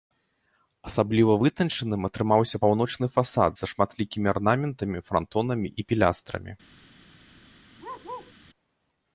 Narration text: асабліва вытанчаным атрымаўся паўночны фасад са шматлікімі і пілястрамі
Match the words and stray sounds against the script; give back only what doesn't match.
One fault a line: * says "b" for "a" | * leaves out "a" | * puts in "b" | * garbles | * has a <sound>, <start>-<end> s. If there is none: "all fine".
* puts in "арнаментамі франтонамі"
* has a bark, 7.8-8.3 s